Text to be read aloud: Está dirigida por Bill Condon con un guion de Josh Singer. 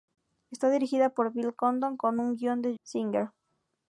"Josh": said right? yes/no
no